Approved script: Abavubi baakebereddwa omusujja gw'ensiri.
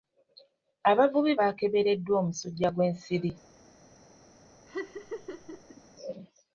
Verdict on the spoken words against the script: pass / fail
pass